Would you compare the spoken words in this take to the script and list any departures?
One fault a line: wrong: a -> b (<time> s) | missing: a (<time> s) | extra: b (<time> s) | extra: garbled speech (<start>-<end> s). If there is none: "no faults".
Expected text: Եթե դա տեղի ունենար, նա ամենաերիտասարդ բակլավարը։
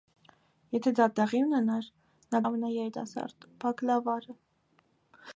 no faults